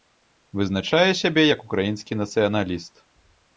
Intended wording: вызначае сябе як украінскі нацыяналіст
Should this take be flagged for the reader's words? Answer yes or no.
no